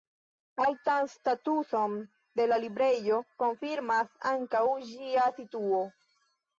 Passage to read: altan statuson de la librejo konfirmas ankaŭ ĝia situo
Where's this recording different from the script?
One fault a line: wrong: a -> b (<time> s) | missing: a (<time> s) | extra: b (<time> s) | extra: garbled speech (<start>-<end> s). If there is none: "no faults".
no faults